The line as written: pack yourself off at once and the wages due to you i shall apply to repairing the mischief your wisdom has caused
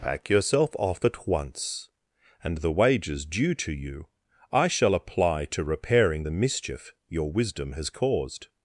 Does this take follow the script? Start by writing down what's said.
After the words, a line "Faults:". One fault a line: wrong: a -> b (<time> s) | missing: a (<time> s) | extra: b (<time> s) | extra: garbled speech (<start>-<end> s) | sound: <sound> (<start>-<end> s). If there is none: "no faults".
pack yourself off at once and the wages due to you i shall apply to repairing the mischief your wisdom has caused
Faults:
no faults